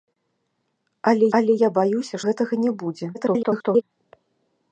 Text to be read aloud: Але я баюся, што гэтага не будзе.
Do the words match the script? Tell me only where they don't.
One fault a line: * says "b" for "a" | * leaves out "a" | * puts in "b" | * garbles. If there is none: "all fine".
* puts in "але"
* leaves out "што"
* garbles